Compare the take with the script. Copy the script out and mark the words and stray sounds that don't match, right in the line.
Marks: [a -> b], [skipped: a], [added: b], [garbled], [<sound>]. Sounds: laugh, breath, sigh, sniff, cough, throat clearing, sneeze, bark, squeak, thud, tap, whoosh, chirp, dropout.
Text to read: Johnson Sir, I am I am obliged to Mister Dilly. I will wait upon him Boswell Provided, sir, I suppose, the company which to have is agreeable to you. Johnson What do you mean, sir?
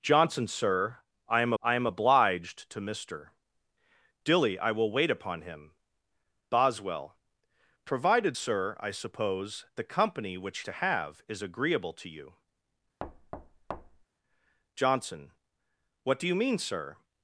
Johnson Sir, I am I am obliged to Mister Dilly. I will wait upon him Boswell Provided, sir, I suppose, the company which to have is agreeable to you. [thud] Johnson What do you mean, sir?